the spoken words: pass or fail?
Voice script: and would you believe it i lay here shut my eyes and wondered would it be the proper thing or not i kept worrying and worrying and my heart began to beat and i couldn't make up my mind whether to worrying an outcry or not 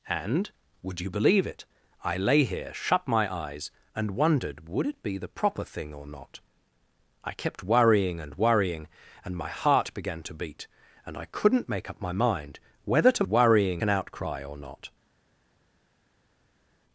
pass